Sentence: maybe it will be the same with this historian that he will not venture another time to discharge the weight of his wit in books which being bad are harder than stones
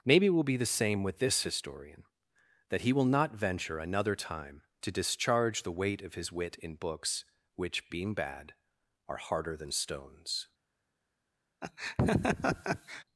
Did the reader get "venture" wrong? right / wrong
right